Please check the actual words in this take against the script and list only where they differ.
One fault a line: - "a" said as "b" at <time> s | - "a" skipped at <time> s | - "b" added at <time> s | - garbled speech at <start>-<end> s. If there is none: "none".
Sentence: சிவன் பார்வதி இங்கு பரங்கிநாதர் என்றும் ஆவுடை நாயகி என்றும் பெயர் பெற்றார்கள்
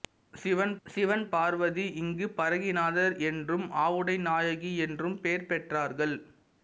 - "சிவன்" added at 0.9 s